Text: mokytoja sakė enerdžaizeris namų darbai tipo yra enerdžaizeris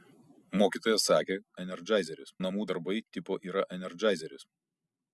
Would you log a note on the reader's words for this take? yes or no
no